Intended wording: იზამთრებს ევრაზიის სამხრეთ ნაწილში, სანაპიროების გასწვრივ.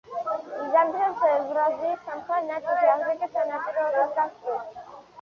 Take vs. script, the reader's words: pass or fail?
fail